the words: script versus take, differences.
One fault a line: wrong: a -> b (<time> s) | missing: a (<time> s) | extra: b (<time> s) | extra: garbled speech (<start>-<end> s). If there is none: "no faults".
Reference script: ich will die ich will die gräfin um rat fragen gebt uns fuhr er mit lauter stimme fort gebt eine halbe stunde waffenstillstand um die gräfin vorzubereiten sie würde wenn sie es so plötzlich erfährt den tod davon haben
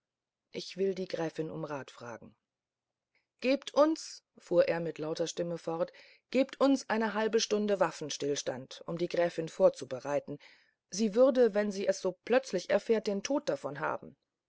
missing: ich will die (1.1 s)
extra: uns (6.6 s)